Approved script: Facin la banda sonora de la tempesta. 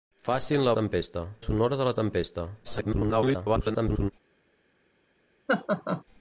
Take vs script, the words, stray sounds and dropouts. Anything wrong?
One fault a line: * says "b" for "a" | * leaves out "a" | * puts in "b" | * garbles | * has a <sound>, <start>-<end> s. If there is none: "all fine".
* says "tempesta" for "banda"
* garbles
* has a laugh, 5.5-6.0 s